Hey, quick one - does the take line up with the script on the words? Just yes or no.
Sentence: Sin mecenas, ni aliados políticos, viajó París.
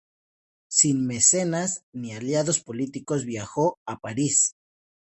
no